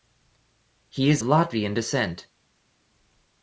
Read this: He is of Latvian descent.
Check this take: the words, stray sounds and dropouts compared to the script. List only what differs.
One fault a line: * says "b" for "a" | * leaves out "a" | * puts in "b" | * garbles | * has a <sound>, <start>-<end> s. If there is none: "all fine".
* leaves out "of"